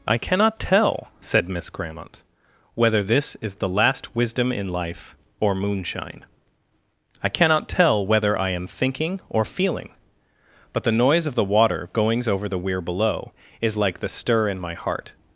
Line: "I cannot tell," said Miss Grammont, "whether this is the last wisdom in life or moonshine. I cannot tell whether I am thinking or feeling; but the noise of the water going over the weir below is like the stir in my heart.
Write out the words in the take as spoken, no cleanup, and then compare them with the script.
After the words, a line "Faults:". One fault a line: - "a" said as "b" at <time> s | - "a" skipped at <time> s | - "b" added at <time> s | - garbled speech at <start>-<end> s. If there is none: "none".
"I cannot tell," said Miss Grammont, "whether this is the last wisdom in life or moonshine. I cannot tell whether I am thinking or feeling; but the noise of the water goings over the weir below is like the stir in my heart.
Faults:
- "going" said as "goings" at 11.9 s